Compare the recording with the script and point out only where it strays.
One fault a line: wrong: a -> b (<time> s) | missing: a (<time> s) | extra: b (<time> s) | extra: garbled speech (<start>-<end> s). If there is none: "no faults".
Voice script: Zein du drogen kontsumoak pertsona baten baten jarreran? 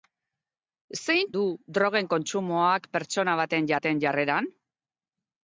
no faults